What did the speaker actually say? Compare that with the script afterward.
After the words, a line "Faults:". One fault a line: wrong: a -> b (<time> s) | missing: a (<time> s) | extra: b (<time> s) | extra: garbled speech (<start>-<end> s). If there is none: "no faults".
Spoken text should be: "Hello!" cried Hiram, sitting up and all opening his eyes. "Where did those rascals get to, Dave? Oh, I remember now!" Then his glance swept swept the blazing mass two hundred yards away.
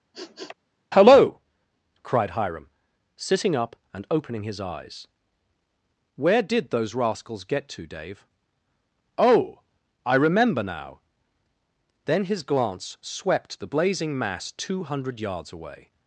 "Hello!" cried Hiram, sitting up and opening his eyes. "Where did those rascals get to, Dave? Oh, I remember now!" Then his glance swept the blazing mass two hundred yards away.
Faults:
missing: all (4.0 s)
missing: swept (13.6 s)